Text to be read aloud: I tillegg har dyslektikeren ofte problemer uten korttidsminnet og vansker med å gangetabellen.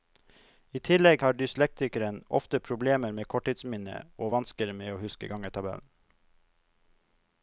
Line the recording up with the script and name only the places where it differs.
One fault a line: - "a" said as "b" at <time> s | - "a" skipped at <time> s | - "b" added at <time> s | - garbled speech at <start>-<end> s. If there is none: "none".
- "uten" said as "med" at 3.2 s
- "huske" added at 5.0 s